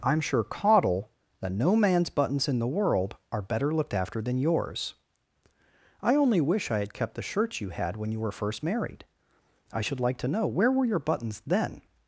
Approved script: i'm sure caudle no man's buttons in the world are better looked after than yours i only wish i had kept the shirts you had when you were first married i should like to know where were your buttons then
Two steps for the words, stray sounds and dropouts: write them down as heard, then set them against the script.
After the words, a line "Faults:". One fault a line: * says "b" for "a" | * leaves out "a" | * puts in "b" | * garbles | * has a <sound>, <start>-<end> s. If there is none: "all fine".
i'm sure caudle that no man's buttons in the world are better looked after than yours i only wish i had kept the shirts you had when you were first married i should like to know where were your buttons then
Faults:
* puts in "that"